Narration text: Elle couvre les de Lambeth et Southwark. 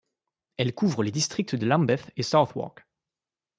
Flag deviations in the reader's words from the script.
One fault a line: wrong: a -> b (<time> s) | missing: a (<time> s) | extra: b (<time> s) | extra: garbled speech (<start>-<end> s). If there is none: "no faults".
extra: districts (1.1 s)